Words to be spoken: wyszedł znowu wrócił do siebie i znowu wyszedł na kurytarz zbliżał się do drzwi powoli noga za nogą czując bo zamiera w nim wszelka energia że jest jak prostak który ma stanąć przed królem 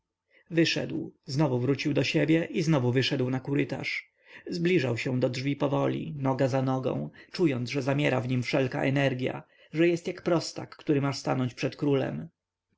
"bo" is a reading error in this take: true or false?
true